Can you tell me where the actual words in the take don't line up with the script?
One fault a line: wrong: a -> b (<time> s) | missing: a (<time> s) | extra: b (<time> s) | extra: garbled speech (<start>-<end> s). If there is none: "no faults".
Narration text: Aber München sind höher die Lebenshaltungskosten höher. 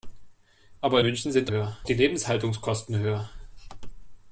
no faults